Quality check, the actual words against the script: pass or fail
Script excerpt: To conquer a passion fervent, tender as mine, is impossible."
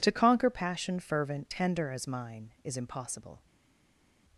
fail